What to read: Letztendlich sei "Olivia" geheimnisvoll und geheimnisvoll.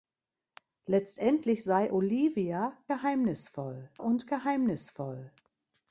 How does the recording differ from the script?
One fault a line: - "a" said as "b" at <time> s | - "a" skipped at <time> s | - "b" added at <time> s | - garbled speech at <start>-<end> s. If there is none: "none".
none